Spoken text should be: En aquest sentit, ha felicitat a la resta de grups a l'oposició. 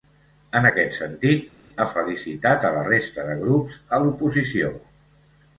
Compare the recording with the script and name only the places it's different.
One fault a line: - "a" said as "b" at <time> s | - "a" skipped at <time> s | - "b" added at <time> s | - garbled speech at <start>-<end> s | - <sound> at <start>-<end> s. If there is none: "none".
none